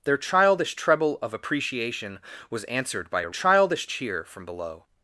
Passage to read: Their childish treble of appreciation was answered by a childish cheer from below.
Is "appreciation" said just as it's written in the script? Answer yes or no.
yes